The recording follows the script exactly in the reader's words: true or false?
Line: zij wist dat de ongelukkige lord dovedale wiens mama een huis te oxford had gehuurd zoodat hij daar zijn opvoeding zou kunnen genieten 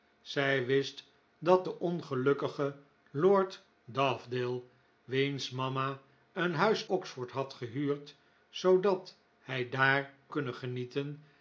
false